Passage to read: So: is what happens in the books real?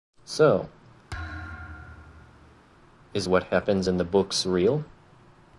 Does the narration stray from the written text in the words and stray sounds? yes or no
yes